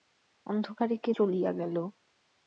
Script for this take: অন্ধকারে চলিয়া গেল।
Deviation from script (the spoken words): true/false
true